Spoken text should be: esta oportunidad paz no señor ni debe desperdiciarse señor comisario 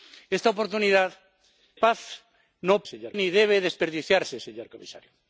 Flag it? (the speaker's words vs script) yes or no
no